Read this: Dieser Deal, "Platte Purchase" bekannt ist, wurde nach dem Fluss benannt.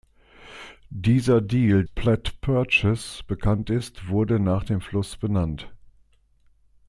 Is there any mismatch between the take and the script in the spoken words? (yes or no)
no